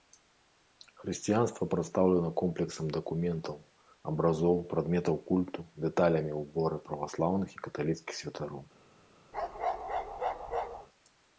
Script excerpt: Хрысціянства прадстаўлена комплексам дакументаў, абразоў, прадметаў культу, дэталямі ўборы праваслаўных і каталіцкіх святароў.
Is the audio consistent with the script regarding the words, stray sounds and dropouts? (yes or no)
no